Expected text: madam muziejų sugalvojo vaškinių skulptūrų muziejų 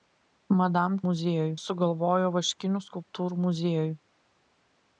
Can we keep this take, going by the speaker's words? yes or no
yes